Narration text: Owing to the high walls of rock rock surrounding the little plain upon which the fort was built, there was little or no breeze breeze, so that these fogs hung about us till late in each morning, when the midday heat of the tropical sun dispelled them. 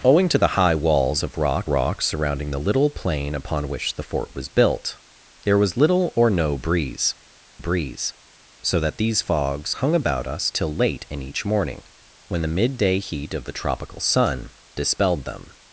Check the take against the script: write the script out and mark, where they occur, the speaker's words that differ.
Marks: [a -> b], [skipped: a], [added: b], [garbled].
Owing to the high walls of rock rock surrounding the little plain upon which the fort was built, there was little or no breeze breeze, so that these fogs hung about us till late in each morning, when the midday heat of the tropical sun dispelled them.